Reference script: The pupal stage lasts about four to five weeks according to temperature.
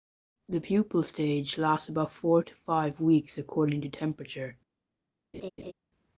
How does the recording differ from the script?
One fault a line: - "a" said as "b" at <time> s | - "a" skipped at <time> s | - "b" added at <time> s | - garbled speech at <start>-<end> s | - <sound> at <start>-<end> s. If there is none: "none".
- laugh at 5.3-5.7 s